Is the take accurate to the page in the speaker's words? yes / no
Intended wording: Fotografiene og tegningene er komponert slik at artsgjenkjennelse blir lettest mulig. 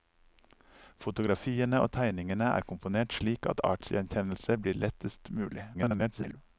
no